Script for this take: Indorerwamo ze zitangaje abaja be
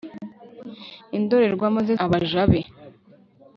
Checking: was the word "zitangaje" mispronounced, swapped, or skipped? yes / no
yes